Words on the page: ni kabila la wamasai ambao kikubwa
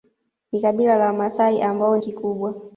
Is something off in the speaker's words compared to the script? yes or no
no